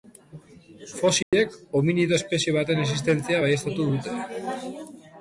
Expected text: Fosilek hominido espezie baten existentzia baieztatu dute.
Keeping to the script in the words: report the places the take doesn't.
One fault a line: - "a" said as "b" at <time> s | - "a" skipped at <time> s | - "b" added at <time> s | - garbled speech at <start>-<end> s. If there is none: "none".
none